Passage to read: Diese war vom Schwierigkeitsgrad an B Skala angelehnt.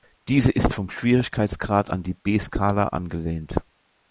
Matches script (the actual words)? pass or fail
fail